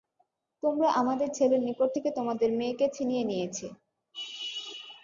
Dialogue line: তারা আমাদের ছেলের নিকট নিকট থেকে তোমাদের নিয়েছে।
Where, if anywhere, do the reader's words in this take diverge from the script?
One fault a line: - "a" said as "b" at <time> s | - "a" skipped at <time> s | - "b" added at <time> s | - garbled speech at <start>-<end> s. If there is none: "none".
- "তারা" said as "তোমরা" at 0.6 s
- "নিকট" skipped at 1.9 s
- "মেয়েকে ছিনিয়ে" added at 2.6 s